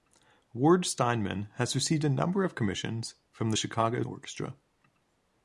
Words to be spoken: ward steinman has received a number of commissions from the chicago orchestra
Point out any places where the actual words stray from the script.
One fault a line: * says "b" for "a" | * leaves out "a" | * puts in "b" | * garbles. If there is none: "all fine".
all fine